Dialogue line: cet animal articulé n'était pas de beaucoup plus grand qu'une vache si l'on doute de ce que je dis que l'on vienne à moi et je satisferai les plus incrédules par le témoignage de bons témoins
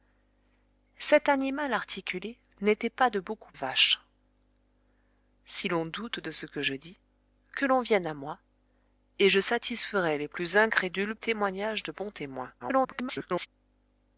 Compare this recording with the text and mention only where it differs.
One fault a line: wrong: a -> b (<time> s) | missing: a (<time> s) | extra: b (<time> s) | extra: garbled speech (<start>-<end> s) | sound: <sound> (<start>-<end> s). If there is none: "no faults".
missing: plus grand qu'une (3.5 s)
missing: par le (11.1 s)
extra: garbled speech (12.6-13.5 s)